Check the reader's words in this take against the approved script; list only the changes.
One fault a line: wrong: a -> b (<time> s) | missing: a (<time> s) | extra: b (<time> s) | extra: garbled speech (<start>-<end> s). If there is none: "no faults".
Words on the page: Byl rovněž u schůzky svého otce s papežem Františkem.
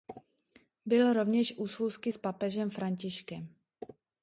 missing: svého otce (2.1 s)